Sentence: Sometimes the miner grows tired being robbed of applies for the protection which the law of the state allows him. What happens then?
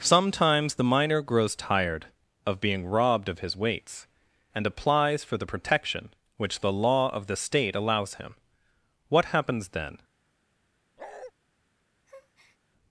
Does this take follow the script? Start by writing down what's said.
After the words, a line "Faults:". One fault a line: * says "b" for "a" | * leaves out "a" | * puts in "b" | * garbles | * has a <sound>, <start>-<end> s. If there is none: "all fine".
Sometimes the miner grows tired of being robbed of his weights, and applies for the protection which the law of the state allows him. What happens then?
Faults:
* puts in "of"
* puts in "his weights and"
* has a bark, 11.0-11.3 s
* has a breath, 12.1-12.6 s